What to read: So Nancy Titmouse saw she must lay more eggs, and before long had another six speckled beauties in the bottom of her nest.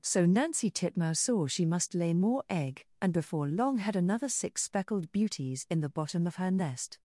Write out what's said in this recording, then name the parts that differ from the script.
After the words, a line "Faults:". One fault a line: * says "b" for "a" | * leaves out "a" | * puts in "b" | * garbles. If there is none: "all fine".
So Nancy Titmouse saw she must lay more egg, and before long had another six speckled beauties in the bottom of her nest.
Faults:
* says "egg" for "eggs"